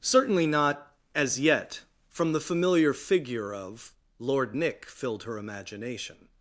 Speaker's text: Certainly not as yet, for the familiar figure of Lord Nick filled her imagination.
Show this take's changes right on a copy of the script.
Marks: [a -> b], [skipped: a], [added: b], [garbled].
Certainly not as yet, [for -> from] the familiar figure of Lord Nick filled her imagination.